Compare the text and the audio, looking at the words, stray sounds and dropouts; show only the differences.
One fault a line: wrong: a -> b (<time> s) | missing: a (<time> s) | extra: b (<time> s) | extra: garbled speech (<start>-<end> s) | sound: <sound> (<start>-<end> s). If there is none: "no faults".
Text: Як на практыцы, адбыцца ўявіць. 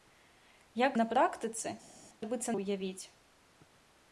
no faults